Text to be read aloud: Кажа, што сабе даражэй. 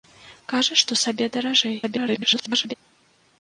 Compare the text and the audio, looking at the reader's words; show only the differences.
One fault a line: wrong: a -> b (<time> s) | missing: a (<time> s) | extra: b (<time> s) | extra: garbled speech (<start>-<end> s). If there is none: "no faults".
extra: garbled speech (1.8-2.7 s)